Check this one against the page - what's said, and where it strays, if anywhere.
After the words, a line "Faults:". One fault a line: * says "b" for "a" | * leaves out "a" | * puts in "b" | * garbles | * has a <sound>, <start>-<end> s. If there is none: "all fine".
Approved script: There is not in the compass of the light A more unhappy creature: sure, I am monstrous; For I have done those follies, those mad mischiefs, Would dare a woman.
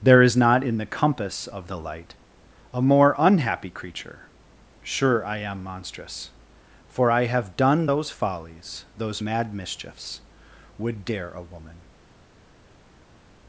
There is not in the compass of the light A more unhappy creature: sure, I am monstrous; For I have done those follies, those mad mischiefs, Would dare a woman.
Faults:
all fine